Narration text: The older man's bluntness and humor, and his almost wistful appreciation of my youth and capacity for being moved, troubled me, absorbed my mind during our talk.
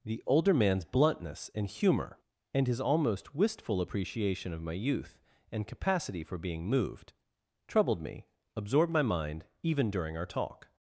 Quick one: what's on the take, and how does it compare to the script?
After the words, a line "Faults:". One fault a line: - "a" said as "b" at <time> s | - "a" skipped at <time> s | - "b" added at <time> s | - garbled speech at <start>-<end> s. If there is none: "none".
The older man's bluntness and humor, and his almost wistful appreciation of my youth and capacity for being moved, troubled me, absorbed my mind even during our talk.
Faults:
- "even" added at 9.6 s